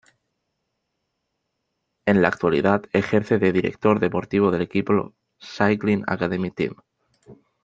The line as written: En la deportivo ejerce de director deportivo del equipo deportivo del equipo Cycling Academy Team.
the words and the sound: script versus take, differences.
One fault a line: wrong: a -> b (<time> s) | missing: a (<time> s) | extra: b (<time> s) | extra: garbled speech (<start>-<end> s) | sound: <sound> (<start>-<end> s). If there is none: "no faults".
wrong: deportivo -> actualidad (2.3 s)
missing: deportivo del equipo (5.1 s)